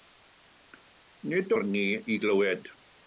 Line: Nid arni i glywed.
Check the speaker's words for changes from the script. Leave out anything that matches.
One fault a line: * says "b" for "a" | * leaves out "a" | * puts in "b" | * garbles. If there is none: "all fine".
all fine